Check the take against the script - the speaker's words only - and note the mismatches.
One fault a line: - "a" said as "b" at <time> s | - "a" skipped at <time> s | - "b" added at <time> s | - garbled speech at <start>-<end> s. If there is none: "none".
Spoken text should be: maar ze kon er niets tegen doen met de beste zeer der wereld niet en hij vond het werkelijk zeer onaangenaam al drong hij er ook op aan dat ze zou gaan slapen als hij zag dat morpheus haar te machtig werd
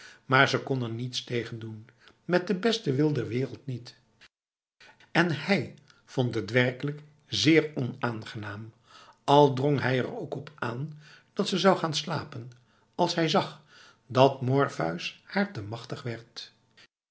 - "zeer" said as "wil" at 2.9 s